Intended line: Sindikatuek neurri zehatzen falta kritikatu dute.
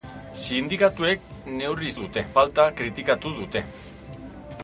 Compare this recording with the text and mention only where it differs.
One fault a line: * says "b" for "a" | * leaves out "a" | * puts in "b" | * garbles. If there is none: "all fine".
* says "dute" for "zehatzen"